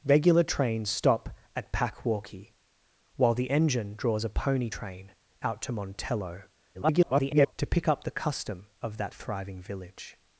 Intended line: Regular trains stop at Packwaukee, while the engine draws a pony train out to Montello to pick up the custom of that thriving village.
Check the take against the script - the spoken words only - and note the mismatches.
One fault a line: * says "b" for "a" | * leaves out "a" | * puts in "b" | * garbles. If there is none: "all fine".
* garbles